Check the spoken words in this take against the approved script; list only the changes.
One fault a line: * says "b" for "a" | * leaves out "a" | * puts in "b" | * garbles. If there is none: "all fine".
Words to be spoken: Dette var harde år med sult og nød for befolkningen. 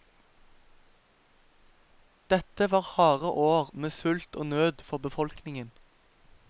all fine